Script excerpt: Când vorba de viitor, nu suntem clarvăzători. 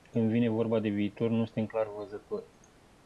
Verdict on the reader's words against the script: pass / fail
fail